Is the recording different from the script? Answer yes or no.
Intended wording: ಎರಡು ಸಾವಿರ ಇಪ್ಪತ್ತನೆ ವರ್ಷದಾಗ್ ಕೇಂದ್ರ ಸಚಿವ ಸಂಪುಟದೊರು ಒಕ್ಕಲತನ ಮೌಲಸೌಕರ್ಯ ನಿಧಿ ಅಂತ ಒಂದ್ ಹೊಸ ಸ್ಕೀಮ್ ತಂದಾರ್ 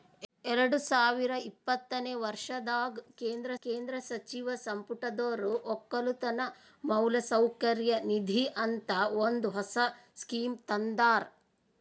yes